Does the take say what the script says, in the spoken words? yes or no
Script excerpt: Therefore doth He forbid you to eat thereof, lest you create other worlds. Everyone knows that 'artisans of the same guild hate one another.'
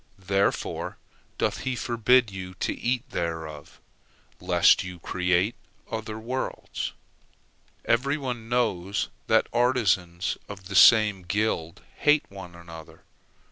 yes